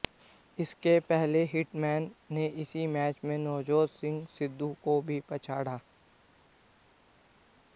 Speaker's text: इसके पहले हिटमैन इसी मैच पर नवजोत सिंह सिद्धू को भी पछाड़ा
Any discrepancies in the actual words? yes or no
yes